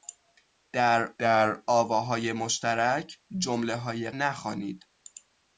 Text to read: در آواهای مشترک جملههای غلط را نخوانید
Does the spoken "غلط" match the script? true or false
false